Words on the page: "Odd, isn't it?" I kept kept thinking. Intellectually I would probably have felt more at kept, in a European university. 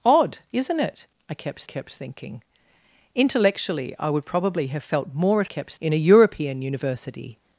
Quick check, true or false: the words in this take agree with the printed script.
true